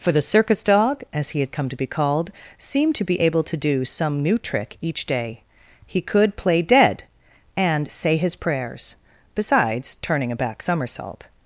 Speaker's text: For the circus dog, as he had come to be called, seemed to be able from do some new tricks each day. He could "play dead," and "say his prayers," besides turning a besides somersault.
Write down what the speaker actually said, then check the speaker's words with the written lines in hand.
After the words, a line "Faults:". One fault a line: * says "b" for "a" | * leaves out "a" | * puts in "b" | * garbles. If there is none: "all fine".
For the circus dog, as he had come to be called, seemed to be able to do some new trick each day. He could "play dead," and "say his prayers," besides turning a back somersault.
Faults:
* says "to" for "from"
* says "trick" for "tricks"
* says "back" for "besides"